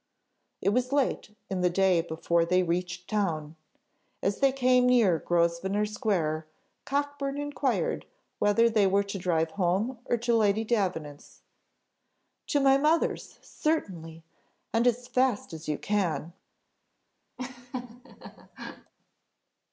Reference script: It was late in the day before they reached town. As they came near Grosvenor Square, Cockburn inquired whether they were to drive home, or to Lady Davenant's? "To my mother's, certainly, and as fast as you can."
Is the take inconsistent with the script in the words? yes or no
no